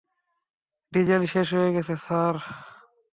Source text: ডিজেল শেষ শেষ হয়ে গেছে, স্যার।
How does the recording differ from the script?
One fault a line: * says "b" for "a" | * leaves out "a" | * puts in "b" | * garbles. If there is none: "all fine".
* leaves out "শেষ"